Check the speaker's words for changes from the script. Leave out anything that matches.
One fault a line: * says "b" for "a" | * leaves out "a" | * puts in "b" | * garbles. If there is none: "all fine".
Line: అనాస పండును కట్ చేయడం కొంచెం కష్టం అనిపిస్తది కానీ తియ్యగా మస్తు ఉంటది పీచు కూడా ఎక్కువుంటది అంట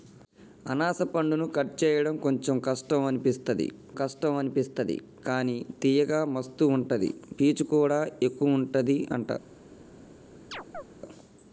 * puts in "కష్టం అనిపిస్తది"